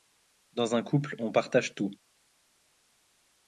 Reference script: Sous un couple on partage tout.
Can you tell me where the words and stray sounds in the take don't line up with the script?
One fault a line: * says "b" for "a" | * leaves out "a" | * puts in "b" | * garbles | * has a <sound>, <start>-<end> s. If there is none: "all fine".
* says "Dans" for "Sous"